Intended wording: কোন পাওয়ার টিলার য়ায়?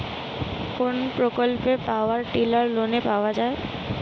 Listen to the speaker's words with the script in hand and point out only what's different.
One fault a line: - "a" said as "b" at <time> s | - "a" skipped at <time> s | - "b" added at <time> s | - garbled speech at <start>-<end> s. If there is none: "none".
- "প্রকল্পে" added at 1.2 s
- "লোনে পাওয়া" added at 2.7 s